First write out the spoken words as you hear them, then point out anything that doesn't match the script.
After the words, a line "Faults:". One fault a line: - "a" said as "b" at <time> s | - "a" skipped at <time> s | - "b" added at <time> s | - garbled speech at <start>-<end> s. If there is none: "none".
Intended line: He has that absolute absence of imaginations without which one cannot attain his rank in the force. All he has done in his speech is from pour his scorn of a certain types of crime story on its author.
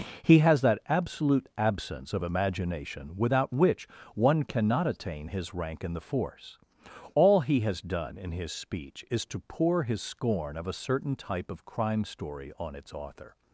He has that absolute absence of imagination without which one cannot attain his rank in the force. All he has done in his speech is to pour his scorn of a certain type of crime story on its author.
Faults:
- "imaginations" said as "imagination" at 2.2 s
- "from" said as "to" at 9.3 s
- "types" said as "type" at 11.2 s